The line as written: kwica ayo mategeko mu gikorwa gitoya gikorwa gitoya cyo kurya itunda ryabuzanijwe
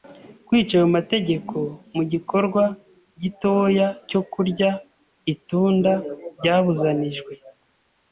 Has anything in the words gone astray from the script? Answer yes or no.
yes